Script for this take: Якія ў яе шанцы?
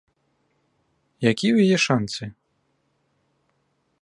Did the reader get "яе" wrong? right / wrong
right